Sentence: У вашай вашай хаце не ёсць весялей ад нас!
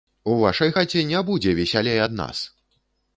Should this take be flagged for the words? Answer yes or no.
yes